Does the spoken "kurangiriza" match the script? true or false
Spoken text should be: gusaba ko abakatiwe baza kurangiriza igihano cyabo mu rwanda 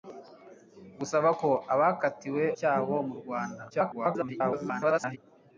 false